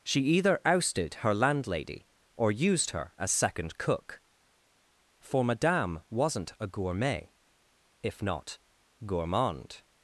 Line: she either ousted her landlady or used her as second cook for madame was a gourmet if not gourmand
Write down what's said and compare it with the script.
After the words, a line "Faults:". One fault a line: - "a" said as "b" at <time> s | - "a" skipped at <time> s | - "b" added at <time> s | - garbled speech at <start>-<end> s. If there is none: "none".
she either ousted her landlady or used her as second cook for madame wasn't a gourmet if not gourmand
Faults:
- "was" said as "wasn't" at 6.1 s